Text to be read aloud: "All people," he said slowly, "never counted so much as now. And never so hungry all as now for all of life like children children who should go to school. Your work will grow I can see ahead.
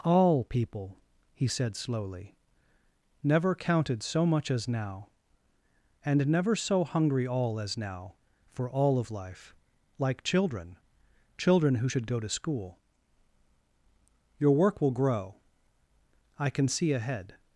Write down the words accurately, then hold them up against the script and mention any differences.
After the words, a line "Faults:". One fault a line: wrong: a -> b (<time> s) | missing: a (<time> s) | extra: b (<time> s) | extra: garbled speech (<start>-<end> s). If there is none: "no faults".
"All people," he said slowly, "never counted so much as now. And never so hungry all as now for all of life like children children who should go to school. Your work will grow I can see ahead.
Faults:
no faults